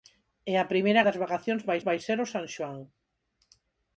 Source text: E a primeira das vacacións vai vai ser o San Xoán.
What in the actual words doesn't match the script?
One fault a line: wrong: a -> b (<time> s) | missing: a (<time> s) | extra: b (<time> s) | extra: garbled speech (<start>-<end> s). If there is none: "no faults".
no faults